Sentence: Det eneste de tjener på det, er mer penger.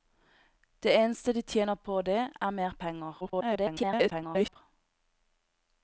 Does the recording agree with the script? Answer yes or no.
no